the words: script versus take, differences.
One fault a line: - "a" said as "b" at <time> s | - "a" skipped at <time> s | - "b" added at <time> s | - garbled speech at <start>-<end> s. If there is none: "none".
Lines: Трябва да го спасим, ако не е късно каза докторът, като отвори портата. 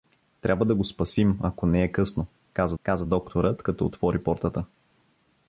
- "каза" added at 2.8 s